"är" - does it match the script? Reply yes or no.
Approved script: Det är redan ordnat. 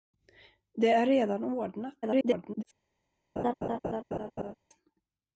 yes